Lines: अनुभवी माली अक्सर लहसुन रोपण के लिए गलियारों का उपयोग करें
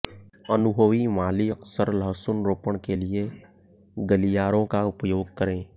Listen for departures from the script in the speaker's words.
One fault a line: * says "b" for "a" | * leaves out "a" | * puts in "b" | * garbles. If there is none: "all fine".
all fine